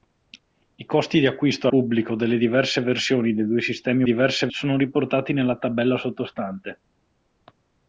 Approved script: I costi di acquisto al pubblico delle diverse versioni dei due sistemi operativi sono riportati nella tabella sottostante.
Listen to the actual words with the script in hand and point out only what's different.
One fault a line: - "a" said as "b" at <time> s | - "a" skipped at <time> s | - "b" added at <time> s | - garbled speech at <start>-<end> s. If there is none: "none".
- "al" skipped at 1.7 s
- "operativi" said as "diverse" at 4.0 s